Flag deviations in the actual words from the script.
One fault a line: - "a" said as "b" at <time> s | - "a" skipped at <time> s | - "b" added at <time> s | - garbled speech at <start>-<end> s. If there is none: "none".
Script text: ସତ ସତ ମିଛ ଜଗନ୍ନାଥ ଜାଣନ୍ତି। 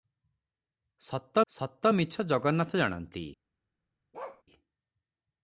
none